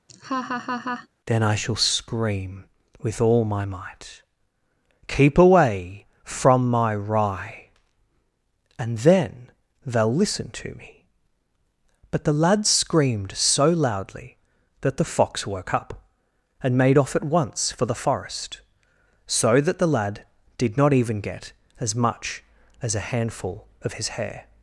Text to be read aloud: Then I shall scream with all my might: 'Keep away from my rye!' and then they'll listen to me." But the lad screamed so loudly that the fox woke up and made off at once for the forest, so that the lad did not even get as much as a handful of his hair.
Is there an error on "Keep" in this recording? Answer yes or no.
no